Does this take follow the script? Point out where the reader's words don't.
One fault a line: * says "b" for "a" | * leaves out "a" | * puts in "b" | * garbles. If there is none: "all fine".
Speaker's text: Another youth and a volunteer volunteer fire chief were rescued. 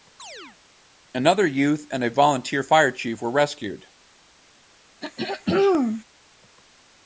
* leaves out "volunteer"